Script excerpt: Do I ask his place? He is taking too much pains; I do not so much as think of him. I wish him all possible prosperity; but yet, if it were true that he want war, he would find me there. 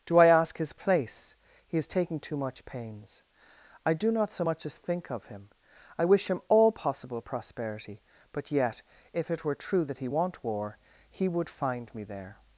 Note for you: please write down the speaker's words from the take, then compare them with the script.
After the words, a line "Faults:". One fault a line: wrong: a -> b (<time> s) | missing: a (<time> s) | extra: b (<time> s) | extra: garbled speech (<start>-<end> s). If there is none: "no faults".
Do I ask his place? He is taking too much pains; I do not so much as think of him. I wish him all possible prosperity; but yet, if it were true that he want war, he would find me there.
Faults:
no faults